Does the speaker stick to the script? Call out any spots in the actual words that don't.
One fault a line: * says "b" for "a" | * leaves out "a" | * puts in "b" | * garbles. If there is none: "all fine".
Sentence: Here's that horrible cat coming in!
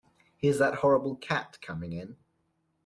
all fine